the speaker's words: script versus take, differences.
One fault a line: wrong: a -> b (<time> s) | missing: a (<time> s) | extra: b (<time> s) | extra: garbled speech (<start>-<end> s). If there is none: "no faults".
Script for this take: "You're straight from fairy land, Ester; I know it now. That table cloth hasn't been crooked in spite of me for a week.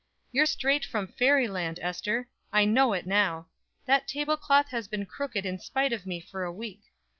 wrong: hasn't -> has (4.7 s)